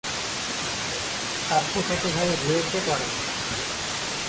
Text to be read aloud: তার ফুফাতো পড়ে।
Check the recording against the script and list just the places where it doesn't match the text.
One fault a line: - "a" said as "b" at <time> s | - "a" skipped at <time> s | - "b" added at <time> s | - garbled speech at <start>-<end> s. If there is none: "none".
- "ভাই রুয়েটে" added at 2.1 s